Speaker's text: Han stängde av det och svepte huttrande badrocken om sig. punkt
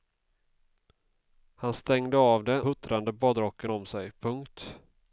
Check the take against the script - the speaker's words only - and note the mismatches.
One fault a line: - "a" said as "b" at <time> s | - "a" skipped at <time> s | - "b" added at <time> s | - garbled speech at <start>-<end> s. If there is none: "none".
- "och svepte" skipped at 2.6 s